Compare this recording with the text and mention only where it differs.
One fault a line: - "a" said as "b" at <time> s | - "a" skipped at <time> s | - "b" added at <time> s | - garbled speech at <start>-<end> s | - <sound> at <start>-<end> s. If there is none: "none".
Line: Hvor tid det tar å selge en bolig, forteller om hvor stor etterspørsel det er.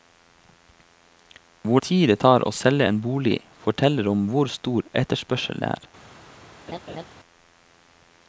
- laugh at 6.7-7.0 s